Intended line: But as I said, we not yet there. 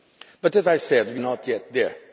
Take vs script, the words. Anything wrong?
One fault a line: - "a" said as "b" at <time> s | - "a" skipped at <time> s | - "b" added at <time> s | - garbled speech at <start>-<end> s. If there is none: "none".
none